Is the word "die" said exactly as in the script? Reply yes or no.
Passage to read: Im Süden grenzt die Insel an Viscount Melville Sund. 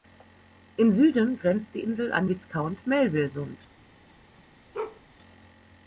yes